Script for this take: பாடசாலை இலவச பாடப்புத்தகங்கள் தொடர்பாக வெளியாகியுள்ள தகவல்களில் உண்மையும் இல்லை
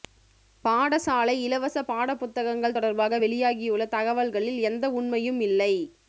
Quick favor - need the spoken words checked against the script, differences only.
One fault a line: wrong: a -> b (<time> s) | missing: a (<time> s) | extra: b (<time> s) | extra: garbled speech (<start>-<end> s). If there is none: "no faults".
extra: எந்த (4.6 s)